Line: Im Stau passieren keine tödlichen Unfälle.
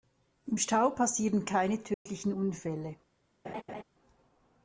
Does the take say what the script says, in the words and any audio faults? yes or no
no